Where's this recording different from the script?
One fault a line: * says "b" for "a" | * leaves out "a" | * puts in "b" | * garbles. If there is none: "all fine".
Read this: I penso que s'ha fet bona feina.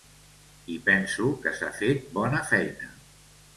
all fine